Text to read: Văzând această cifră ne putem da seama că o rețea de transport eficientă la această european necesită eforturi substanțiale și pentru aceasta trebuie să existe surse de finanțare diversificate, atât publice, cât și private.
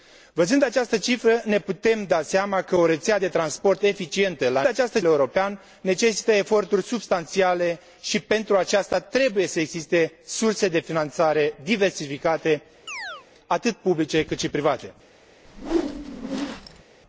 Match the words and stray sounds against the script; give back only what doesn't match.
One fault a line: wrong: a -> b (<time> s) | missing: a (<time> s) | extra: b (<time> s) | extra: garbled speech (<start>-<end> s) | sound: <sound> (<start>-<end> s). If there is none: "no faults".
sound: chirp (12.9-13.3 s)
sound: whoosh (15.4-16.8 s)